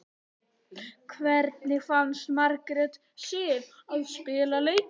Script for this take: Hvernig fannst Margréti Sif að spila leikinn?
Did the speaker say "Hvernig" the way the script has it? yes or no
yes